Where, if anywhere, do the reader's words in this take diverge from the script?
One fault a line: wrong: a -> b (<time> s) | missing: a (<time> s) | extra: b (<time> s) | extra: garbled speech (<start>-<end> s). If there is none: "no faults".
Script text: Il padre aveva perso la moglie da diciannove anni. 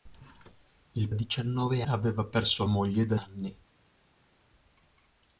wrong: padre -> diciannove (1.1 s)
missing: la (2.6 s)
missing: diciannove (3.2 s)